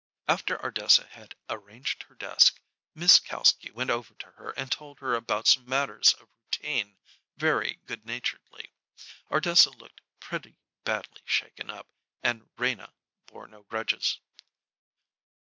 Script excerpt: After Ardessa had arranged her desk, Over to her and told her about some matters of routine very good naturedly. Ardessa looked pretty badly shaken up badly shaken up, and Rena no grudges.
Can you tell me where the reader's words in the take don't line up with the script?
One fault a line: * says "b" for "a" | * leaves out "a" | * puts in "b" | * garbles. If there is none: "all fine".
* puts in "Miss Kalski went"
* leaves out "badly shaken up"
* puts in "bore"